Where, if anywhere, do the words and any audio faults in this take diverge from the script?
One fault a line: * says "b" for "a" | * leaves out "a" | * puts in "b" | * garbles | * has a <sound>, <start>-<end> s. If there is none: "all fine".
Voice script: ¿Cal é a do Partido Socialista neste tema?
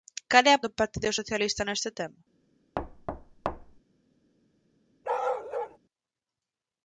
* has a thud, 2.8-3.8 s
* has a bark, 5.0-5.8 s